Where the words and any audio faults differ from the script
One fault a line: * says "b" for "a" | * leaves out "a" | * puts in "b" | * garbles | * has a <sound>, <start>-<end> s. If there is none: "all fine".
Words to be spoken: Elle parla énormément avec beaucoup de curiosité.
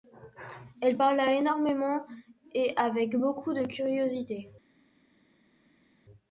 * puts in "et"